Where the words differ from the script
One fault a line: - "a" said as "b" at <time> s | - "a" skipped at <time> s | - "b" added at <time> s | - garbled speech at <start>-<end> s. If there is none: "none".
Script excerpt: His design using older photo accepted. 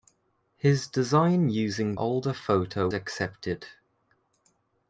none